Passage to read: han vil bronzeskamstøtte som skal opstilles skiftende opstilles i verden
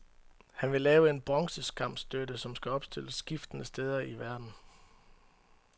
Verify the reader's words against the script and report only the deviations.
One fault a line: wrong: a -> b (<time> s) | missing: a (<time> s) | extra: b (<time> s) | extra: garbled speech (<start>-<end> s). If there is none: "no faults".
extra: lave en (0.8 s)
wrong: opstilles -> steder (3.6 s)